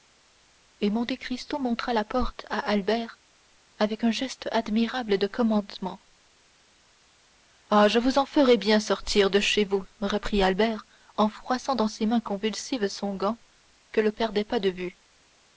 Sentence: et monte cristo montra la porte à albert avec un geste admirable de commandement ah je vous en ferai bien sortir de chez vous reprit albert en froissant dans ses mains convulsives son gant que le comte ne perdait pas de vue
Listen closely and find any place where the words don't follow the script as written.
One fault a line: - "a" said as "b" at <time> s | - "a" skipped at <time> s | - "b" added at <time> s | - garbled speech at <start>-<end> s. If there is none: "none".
- "comte ne" skipped at 14.1 s